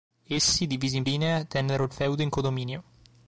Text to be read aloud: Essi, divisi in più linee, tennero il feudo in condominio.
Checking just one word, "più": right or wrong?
wrong